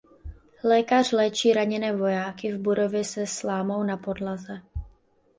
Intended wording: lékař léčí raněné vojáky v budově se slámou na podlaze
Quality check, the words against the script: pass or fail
pass